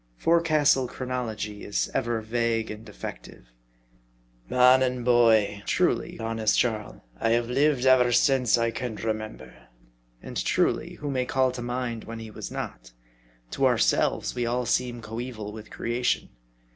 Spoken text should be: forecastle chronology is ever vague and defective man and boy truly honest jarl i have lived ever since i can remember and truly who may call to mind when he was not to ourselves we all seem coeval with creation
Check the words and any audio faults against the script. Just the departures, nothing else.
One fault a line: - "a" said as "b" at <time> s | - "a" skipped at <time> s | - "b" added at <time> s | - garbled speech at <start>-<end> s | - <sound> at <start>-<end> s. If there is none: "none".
none